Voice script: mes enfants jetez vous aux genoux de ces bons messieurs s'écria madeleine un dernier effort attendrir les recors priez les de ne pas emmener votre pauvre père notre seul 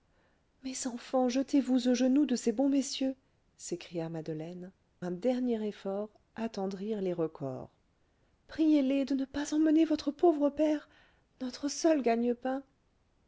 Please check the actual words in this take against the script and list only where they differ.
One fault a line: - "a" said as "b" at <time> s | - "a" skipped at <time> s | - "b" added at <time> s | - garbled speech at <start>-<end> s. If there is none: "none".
none